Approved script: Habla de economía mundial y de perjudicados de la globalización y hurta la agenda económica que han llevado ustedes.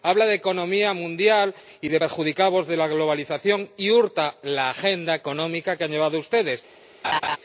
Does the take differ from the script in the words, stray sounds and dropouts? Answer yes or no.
yes